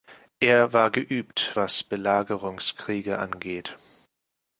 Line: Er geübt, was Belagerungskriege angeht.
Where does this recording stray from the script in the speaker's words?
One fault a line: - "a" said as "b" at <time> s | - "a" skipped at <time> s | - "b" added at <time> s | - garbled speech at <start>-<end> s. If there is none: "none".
- "war" added at 0.7 s